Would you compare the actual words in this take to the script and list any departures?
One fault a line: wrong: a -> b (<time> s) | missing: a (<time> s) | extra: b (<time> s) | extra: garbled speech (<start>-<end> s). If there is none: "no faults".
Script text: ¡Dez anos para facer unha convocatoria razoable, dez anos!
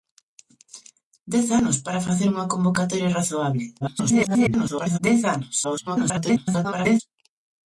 extra: garbled speech (3.8-5.0 s)
extra: garbled speech (5.6-7.0 s)